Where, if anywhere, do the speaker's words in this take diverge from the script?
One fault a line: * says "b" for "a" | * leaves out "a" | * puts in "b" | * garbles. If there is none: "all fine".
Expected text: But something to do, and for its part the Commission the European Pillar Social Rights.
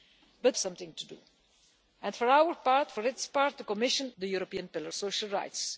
all fine